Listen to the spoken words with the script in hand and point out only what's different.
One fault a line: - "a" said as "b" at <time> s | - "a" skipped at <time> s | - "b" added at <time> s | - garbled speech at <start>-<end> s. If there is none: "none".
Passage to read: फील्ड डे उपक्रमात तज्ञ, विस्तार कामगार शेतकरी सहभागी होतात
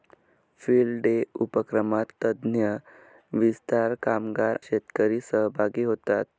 none